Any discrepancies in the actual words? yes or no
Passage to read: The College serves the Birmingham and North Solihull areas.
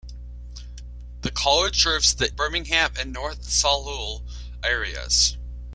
no